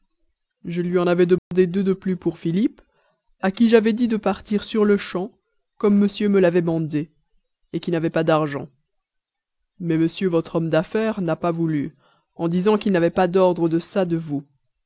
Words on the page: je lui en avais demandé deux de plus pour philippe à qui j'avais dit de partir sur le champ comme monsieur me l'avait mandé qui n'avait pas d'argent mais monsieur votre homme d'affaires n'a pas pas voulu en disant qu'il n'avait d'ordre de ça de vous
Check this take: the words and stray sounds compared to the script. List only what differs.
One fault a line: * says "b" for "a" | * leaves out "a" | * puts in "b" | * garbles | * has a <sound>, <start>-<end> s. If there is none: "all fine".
* has a dropout, 1.4-1.5 s
* leaves out "pas"
* puts in "pas"